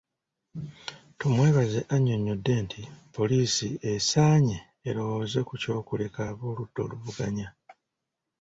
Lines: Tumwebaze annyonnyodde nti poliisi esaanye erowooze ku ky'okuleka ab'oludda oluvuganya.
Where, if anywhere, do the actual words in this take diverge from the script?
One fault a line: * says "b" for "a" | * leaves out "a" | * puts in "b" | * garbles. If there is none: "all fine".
all fine